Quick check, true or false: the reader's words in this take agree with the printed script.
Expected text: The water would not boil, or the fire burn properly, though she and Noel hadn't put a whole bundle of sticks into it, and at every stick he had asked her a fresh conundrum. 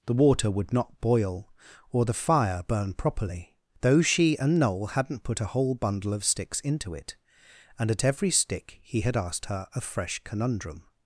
true